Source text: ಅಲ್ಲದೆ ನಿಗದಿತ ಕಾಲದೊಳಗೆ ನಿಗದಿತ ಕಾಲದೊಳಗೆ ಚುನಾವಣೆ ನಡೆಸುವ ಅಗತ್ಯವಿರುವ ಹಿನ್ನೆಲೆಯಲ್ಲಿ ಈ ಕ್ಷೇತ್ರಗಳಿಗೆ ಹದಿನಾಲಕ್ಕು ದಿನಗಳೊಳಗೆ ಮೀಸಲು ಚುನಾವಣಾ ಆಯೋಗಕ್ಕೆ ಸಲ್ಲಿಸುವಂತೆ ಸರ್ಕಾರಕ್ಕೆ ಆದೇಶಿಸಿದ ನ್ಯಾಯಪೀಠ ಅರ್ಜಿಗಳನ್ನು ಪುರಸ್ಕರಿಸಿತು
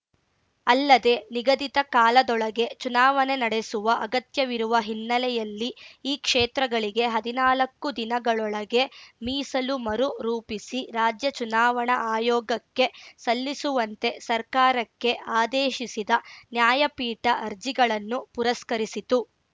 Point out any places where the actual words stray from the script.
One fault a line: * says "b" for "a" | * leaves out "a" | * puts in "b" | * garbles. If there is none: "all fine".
* leaves out "ನಿಗದಿತ ಕಾಲದೊಳಗೆ"
* puts in "ಮರು ರೂಪಿಸಿ ರಾಜ್ಯ"